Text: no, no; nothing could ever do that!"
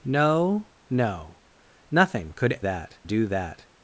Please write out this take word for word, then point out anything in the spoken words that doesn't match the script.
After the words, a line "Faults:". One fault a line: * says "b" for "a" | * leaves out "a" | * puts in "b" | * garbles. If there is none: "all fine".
no, no; nothing could that do that!"
Faults:
* says "that" for "ever"